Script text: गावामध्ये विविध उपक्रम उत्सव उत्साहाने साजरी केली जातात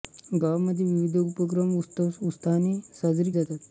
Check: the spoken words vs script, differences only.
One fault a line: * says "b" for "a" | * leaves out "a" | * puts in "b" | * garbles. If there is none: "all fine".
* leaves out "केली"